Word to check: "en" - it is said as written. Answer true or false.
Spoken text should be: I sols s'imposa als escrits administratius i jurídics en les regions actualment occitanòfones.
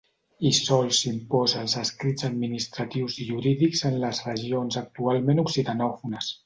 true